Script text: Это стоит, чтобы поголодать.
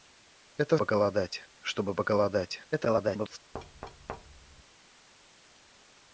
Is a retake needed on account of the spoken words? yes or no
yes